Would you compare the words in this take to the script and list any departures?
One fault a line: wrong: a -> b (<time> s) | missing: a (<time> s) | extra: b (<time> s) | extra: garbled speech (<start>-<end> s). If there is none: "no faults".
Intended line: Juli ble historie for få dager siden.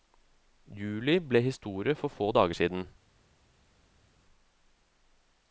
no faults